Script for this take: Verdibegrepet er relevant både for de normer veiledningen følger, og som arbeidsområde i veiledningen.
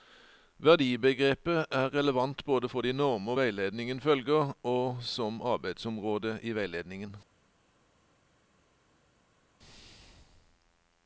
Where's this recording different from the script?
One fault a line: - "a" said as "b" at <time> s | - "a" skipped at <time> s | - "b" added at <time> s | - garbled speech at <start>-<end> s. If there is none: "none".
none